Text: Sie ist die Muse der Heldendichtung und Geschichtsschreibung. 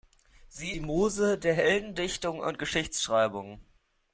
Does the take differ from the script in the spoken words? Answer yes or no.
yes